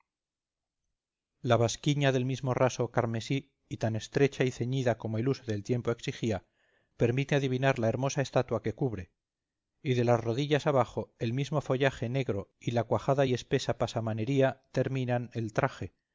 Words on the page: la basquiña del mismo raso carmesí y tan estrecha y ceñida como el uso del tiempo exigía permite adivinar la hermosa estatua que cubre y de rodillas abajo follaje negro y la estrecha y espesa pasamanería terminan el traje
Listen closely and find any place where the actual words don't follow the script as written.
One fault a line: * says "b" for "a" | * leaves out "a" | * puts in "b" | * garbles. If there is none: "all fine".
* puts in "las"
* puts in "el mismo"
* says "cuajada" for "estrecha"